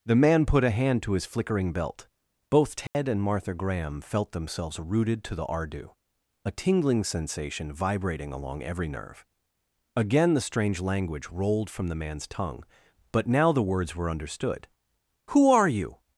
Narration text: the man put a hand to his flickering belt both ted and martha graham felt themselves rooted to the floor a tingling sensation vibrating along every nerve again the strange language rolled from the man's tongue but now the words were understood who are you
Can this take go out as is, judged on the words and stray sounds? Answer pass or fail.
fail